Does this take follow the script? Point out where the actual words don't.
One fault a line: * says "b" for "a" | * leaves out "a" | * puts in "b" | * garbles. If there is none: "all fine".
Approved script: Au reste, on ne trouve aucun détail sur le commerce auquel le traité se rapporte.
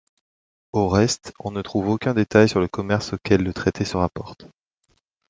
all fine